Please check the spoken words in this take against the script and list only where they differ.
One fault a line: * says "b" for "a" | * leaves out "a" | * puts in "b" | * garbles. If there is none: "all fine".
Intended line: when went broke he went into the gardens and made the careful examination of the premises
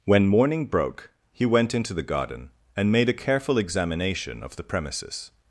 * says "morning" for "went"
* says "garden" for "gardens"
* says "a" for "the"